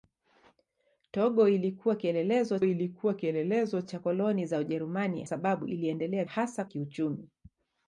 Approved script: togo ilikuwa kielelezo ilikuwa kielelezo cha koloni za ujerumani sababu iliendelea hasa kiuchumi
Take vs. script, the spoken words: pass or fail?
pass